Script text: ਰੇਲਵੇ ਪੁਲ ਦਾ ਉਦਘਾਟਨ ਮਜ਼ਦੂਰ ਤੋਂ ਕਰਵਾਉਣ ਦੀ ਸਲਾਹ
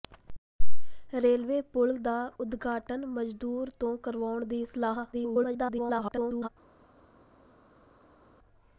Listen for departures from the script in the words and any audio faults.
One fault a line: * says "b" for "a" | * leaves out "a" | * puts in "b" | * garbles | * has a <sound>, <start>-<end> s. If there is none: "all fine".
* garbles